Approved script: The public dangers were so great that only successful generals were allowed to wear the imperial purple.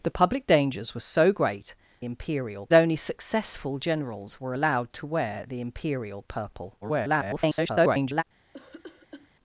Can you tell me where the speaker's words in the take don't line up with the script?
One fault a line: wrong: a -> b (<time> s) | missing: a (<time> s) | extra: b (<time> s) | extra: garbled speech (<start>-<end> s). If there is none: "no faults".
wrong: that -> imperial (2.0 s)
extra: garbled speech (6.8-8.2 s)